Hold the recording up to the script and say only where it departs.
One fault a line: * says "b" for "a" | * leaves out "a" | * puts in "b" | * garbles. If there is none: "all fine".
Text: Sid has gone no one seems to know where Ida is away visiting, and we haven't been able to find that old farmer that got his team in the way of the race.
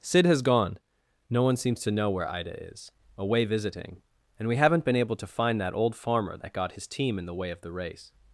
all fine